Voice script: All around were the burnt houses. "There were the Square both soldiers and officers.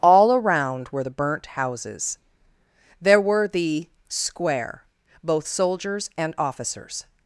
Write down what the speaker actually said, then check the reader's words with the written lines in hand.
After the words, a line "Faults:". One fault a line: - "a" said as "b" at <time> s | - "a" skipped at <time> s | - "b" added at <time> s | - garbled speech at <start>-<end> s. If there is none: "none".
All around were the burnt houses. "There were the Square both soldiers and officers.
Faults:
none